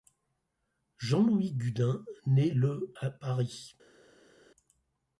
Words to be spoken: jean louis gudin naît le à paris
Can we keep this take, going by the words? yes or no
yes